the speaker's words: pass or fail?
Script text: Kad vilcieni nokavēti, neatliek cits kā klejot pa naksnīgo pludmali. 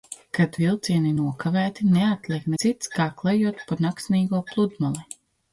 pass